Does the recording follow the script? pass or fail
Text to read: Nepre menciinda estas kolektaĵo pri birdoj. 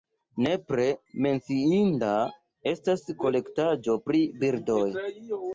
pass